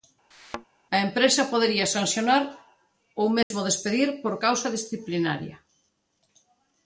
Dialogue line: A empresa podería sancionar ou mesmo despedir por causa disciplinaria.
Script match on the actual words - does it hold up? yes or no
yes